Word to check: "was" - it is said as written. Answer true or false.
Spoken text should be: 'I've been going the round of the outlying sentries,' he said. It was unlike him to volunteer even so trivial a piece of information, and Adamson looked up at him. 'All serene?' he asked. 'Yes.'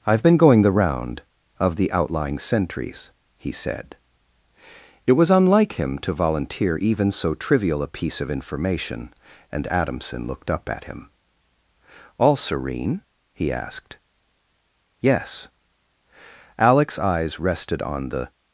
true